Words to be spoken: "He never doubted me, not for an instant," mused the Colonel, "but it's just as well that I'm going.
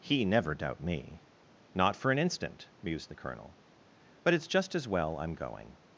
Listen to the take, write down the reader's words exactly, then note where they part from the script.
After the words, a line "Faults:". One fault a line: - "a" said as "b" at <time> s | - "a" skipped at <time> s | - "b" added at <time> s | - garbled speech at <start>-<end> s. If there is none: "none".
"He never doubt me, not for an instant," mused the Colonel, "but it's just as well I'm going.
Faults:
- "doubted" said as "doubt" at 0.6 s
- "that" skipped at 5.2 s